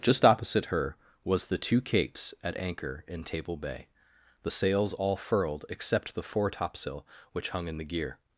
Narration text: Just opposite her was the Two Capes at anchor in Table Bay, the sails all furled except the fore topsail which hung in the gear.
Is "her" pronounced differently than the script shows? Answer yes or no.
no